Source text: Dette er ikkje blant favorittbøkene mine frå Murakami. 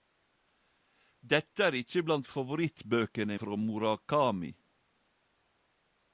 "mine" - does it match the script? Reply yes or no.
no